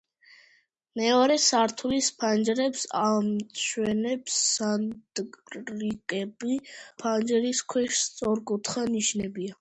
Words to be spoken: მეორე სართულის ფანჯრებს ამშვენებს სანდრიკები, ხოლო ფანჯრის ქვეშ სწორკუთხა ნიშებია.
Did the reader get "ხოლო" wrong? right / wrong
wrong